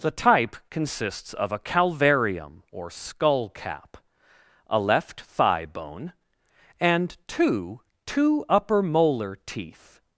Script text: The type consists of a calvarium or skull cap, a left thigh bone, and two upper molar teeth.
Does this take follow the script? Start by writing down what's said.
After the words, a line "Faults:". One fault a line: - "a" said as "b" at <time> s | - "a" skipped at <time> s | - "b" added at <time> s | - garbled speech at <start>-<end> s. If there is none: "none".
The type consists of a calvarium or skull cap, a left thigh bone, and two two upper molar teeth.
Faults:
- "two" added at 8.1 s